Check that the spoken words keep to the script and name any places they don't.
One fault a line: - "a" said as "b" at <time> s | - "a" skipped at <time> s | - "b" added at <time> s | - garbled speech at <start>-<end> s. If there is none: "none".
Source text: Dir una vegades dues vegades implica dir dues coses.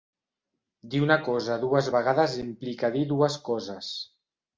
- "vegades" said as "cosa" at 1.3 s